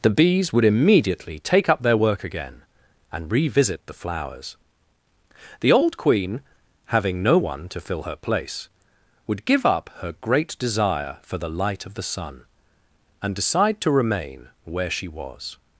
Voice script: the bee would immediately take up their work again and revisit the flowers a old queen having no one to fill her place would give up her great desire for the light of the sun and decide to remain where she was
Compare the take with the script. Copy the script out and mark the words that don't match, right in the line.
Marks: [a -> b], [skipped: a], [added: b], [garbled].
the [bee -> bees] would immediately take up their work again and revisit the flowers [a -> the] old queen having no one to fill her place would give up her great desire for the light of the sun and decide to remain where she was